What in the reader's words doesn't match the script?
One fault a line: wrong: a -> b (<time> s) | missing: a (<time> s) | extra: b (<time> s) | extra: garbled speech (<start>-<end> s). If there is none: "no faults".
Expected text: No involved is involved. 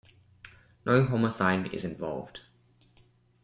wrong: involved -> homicide (1.1 s)